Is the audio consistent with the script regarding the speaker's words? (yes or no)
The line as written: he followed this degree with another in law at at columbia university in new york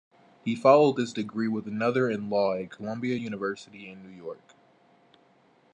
no